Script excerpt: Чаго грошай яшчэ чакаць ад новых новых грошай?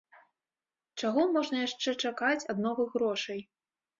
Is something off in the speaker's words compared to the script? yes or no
yes